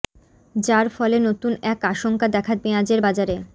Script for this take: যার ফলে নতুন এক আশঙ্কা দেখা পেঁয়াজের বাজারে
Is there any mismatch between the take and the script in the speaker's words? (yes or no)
no